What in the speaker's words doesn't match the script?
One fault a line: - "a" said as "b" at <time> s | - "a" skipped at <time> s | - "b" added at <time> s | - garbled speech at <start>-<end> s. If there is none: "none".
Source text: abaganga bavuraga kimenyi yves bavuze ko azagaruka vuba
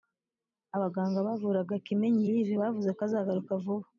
none